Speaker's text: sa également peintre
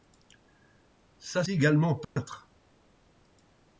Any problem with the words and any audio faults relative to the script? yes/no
yes